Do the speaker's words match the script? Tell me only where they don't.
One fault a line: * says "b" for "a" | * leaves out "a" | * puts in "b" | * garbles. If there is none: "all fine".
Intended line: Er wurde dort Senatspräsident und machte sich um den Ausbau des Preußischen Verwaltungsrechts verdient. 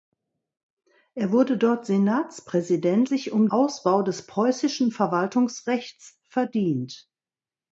* leaves out "und machte"
* leaves out "den"